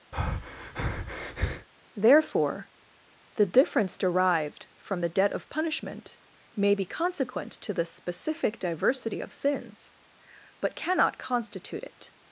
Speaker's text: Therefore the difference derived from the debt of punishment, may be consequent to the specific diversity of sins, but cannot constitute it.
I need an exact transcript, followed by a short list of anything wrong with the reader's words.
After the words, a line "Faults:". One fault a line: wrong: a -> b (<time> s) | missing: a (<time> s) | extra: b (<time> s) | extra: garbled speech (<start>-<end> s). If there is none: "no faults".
Therefore the difference derived from the debt of punishment, may be consequent to the specific diversity of sins, but cannot constitute it.
Faults:
no faults